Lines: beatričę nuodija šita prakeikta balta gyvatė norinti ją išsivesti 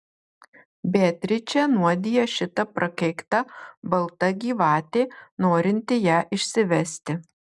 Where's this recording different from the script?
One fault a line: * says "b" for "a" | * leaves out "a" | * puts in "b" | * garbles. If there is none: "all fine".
all fine